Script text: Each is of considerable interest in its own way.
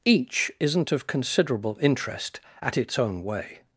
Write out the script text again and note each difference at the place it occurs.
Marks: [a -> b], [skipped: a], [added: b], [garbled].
Each [is -> isn't] of considerable interest [in -> at] its own way.